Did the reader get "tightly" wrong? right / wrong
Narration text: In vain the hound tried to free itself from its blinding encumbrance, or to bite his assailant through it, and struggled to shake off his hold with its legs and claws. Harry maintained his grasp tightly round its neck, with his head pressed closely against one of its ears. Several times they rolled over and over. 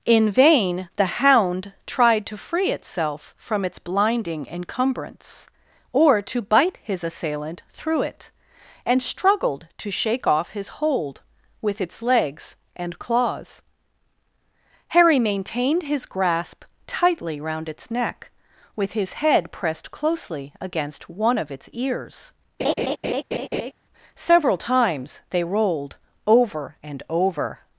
right